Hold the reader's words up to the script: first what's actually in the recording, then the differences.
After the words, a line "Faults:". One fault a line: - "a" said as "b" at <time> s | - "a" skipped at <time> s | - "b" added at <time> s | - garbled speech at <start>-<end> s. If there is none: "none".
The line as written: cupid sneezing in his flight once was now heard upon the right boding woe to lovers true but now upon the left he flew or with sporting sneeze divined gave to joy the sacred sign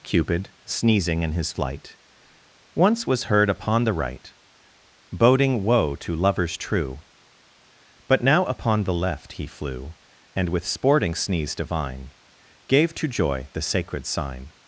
cupid sneezing in his flight once was heard upon the right boding woe to lovers true but now upon the left he flew and with sporting sneeze divine gave to joy the sacred sign
Faults:
- "now" skipped at 3.2 s
- "or" said as "and" at 10.3 s
- "divined" said as "divine" at 11.5 s